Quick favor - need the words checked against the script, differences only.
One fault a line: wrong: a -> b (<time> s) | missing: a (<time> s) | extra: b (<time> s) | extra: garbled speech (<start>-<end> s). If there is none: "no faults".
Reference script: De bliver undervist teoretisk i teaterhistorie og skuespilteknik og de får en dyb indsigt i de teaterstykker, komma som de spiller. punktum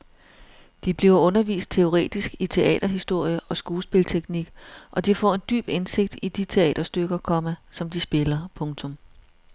no faults